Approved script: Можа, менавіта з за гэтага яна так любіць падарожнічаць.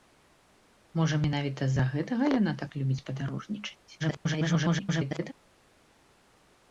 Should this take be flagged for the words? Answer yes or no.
yes